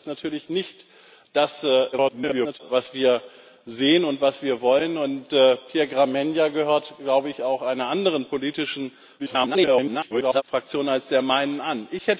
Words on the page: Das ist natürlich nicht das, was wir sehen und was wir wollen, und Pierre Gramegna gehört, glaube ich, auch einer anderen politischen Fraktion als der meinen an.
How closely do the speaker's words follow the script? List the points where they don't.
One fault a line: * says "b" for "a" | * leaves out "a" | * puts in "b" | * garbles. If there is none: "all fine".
* garbles
* garbles